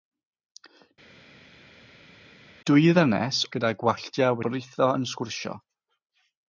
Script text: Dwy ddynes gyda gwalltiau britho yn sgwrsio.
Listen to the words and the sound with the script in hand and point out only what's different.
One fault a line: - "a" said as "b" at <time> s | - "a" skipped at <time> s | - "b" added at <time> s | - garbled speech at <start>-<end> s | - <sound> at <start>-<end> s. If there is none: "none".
none